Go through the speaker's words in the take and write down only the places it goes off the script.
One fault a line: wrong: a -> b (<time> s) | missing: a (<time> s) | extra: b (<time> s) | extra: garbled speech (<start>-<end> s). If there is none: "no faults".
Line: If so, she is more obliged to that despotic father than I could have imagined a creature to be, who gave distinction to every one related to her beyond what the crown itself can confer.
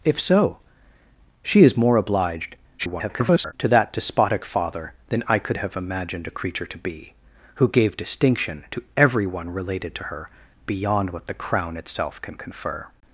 extra: garbled speech (2.8-3.5 s)